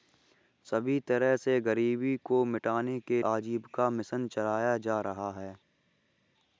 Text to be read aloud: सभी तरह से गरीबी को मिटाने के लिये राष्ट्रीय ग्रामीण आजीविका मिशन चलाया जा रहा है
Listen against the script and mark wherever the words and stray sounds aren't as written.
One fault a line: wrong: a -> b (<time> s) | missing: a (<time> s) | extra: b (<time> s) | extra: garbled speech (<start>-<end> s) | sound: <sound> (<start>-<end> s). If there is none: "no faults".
missing: लिये राष्ट्रीय ग्रामीण (3.2 s)